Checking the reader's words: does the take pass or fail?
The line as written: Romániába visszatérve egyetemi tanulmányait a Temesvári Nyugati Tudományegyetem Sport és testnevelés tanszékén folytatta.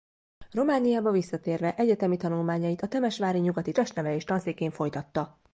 fail